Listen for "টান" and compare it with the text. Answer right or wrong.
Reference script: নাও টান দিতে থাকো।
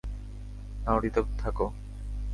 wrong